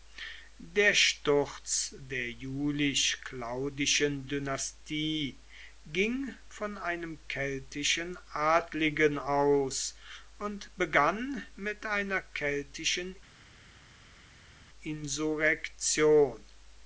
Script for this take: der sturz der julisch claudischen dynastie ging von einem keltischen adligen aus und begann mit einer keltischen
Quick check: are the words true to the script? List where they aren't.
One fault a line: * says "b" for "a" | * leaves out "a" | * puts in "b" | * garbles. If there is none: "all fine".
all fine